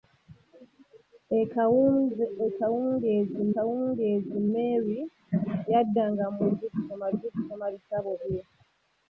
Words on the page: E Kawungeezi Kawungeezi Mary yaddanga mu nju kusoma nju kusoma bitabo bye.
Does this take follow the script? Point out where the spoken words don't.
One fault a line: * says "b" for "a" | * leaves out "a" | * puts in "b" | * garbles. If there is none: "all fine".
all fine